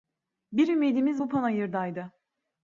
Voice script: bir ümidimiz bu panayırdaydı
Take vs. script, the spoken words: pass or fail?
pass